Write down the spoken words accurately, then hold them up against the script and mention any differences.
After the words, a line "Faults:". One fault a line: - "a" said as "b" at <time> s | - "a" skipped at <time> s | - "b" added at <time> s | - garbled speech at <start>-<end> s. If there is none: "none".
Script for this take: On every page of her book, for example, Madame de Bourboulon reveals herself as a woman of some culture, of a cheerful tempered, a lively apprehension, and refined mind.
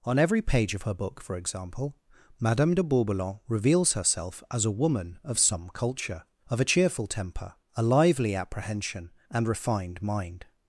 On every page of her book, for example, Madame de Bourboulon reveals herself as a woman of some culture, of a cheerful temper, a lively apprehension, and refined mind.
Faults:
- "tempered" said as "temper" at 7.1 s